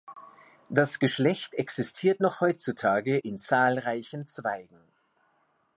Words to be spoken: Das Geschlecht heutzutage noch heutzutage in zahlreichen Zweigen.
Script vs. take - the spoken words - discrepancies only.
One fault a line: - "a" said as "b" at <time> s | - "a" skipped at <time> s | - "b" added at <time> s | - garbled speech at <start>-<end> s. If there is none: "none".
- "heutzutage" said as "existiert" at 1.5 s